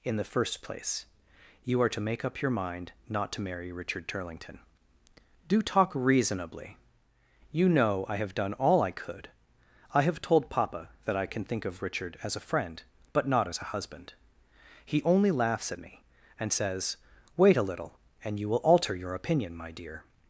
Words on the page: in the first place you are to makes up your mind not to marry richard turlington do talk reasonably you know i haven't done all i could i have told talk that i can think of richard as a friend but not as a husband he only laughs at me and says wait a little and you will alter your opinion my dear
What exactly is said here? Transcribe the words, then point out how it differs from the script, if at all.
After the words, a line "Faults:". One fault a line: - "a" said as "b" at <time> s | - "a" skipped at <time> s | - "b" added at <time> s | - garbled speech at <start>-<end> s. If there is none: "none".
in the first place you are to make up your mind not to marry richard turlington do talk reasonably you know i have done all i could i have told papa that i can think of richard as a friend but not as a husband he only laughs at me and says wait a little and you will alter your opinion my dear
Faults:
- "makes" said as "make" at 2.0 s
- "haven't" said as "have" at 8.2 s
- "talk" said as "papa" at 10.5 s